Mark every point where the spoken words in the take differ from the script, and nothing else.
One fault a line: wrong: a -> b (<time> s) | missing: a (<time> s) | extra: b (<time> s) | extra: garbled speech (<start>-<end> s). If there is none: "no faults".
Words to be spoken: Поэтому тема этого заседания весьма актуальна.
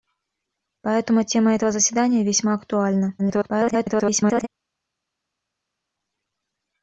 extra: garbled speech (3.2-4.5 s)